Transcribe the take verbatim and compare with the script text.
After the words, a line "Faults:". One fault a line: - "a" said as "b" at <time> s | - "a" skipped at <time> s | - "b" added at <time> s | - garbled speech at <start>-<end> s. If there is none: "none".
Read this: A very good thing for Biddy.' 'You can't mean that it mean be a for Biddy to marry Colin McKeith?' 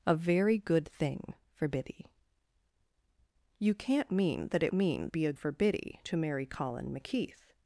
A very good thing for Biddy.' 'You can't mean that it mean be a for Biddy to marry Colin McKeith?'
Faults:
none